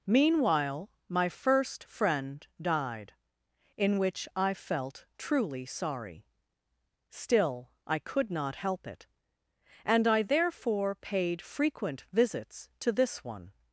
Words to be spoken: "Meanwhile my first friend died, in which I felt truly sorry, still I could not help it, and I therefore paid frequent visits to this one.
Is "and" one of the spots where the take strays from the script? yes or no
no